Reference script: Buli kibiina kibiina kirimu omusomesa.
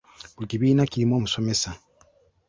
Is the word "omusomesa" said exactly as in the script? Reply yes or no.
yes